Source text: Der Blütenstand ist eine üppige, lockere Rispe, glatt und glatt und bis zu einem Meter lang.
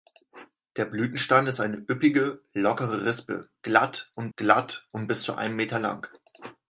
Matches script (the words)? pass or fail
pass